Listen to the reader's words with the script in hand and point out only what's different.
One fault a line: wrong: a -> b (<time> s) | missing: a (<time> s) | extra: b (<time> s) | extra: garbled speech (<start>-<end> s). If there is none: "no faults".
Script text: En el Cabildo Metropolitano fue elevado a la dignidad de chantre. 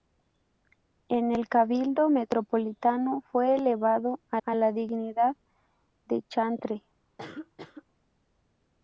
extra: a (4.4 s)